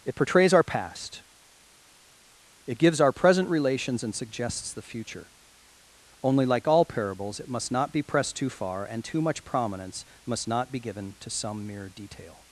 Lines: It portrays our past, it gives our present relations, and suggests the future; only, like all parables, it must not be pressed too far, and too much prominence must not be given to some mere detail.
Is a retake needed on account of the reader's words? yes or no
no